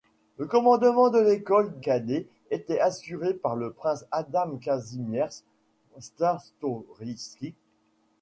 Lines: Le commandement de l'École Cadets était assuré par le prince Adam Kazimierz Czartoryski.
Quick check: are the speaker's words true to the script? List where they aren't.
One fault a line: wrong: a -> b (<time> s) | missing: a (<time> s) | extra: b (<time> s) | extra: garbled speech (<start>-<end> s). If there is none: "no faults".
no faults